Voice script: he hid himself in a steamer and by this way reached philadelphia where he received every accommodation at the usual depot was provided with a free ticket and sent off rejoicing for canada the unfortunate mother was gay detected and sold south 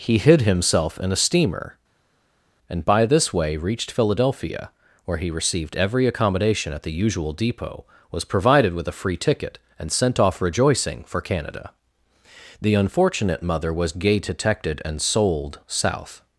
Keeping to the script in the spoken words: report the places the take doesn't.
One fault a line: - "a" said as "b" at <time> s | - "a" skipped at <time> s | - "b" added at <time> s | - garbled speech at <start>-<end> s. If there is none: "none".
none